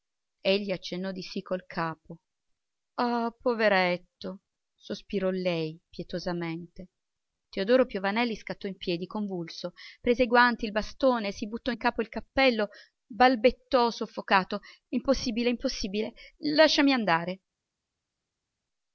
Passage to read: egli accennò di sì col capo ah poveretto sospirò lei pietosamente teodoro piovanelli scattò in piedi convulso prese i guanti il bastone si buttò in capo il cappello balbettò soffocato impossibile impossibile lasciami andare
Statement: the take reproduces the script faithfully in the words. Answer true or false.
true